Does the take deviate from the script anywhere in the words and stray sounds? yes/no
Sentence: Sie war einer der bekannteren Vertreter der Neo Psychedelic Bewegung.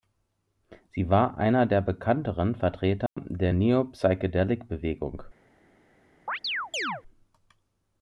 yes